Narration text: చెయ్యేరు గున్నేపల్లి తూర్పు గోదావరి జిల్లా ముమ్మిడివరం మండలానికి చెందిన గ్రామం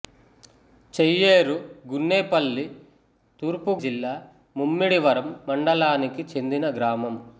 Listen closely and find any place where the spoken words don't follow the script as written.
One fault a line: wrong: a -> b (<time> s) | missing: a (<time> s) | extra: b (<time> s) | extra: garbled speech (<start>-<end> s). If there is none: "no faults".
missing: గోదావరి (3.8 s)